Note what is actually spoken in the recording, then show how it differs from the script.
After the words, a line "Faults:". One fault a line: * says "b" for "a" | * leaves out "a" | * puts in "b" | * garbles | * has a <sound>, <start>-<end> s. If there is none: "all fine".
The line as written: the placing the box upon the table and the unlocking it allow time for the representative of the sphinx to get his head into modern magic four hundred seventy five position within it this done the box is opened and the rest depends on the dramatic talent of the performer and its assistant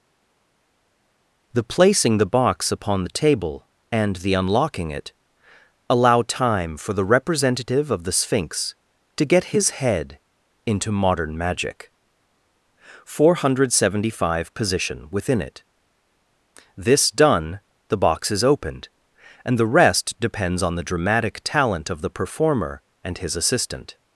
the placing the box upon the table and the unlocking it allow time for the representative of the sphinx to get his head into modern magic four hundred seventy five position within it this done the box is opened and the rest depends on the dramatic talent of the performer and his assistant
Faults:
* says "his" for "its"